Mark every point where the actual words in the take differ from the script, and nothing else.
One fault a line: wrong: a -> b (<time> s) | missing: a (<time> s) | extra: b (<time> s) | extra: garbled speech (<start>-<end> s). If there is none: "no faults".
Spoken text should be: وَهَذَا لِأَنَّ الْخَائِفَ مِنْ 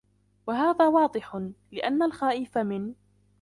extra: وَاضِحٌ (0.9 s)